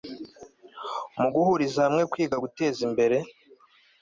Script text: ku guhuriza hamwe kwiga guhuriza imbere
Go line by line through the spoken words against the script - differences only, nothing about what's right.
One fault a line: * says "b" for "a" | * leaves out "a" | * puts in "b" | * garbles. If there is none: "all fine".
* says "mu" for "ku"
* says "guteza" for "guhuriza"